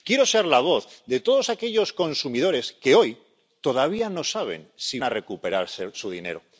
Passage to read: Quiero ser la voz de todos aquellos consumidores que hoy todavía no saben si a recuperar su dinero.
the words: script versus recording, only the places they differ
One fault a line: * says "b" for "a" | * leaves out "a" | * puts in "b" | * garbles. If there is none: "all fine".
all fine